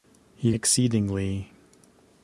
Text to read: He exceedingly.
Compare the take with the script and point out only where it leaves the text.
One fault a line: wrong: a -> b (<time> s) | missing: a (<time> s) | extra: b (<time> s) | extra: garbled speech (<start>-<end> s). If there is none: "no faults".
no faults